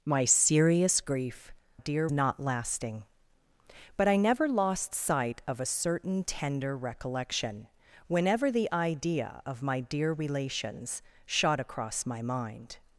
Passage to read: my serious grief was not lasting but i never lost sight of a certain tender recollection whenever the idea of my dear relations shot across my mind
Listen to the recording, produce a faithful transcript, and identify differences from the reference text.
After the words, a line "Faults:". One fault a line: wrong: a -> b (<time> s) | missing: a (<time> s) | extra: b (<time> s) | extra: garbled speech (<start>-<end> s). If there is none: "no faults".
my serious grief dear not lasting but i never lost sight of a certain tender recollection whenever the idea of my dear relations shot across my mind
Faults:
wrong: was -> dear (1.8 s)